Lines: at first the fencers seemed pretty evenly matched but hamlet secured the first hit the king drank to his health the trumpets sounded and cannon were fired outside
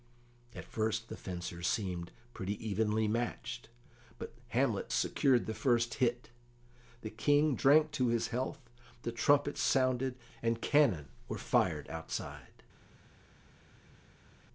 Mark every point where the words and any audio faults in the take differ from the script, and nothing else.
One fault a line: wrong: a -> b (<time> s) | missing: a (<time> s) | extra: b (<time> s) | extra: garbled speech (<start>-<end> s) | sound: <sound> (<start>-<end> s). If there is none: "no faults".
no faults